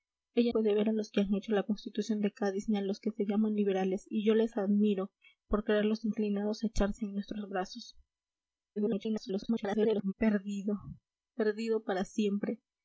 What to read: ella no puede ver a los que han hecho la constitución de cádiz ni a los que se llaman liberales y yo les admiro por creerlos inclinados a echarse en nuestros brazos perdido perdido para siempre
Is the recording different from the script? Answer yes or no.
yes